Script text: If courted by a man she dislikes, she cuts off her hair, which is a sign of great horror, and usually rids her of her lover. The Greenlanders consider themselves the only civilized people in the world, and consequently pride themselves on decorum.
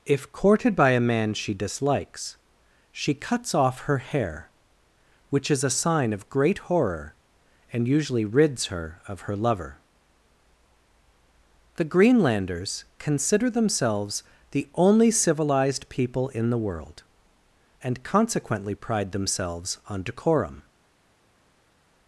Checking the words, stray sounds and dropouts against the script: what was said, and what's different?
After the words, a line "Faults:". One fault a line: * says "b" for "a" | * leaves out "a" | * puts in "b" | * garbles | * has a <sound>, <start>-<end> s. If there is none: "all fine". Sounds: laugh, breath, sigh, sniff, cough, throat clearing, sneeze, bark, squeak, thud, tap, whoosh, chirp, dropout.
If courted by a man she dislikes, she cuts off her hair, which is a sign of great horror, and usually rids her of her lover. The Greenlanders consider themselves the only civilized people in the world, and consequently pride themselves on decorum.
Faults:
all fine